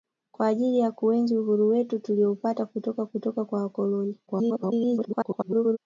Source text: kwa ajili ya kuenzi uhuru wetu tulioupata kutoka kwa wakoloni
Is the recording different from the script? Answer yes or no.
yes